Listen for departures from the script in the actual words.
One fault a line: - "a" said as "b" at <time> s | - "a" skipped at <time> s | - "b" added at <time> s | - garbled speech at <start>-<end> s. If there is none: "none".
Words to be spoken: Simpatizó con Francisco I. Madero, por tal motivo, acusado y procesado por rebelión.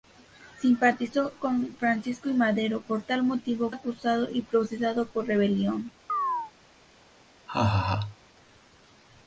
none